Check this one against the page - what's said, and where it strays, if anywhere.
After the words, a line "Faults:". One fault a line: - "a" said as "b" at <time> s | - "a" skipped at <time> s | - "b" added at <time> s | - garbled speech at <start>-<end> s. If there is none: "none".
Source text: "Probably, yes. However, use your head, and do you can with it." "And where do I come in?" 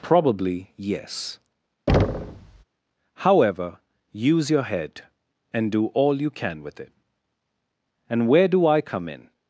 "Probably, yes. However, use your head, and do all you can with it." "And where do I come in?"
Faults:
- "all" added at 5.9 s